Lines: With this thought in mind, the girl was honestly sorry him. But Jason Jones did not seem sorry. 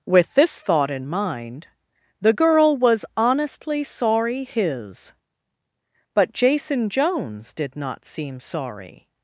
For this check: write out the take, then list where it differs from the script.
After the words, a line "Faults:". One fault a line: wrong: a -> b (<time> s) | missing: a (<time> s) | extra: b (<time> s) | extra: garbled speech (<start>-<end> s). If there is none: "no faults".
With this thought in mind, the girl was honestly sorry his. But Jason Jones did not seem sorry.
Faults:
wrong: him -> his (4.4 s)